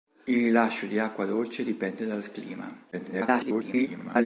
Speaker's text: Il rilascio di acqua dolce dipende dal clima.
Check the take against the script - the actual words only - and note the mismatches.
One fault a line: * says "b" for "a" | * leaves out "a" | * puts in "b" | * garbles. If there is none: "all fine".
* garbles